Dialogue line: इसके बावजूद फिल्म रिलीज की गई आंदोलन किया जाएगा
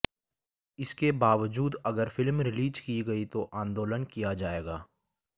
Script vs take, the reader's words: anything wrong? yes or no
yes